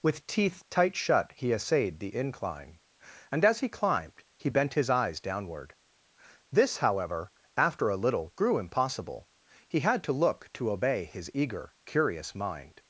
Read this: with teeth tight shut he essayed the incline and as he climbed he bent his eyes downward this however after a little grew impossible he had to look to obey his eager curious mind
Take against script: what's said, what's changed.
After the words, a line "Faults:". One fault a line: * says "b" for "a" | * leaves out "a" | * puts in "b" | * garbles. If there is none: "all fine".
with teeth tight shut he essayed the incline and as he climbed he bent his eyes downward this however after a little grew impossible he had to look to obey his eager curious mind
Faults:
all fine